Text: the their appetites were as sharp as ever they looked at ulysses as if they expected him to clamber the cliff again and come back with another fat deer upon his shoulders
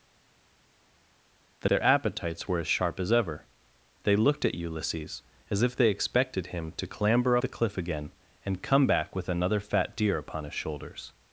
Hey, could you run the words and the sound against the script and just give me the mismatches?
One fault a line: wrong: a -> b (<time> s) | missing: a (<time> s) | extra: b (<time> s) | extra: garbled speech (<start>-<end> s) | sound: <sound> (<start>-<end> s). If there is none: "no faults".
no faults